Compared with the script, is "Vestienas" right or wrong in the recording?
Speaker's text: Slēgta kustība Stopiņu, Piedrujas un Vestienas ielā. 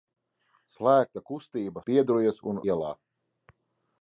wrong